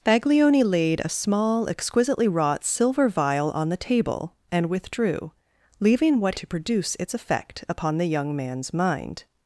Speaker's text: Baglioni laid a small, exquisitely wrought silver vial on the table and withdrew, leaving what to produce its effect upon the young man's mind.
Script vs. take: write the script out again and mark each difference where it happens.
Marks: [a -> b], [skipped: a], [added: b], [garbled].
Baglioni laid a small, exquisitely wrought silver vial on the table and withdrew, leaving what to produce its effect upon the young man's mind.